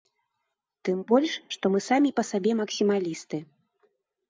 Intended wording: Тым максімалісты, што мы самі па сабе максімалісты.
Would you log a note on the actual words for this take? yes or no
yes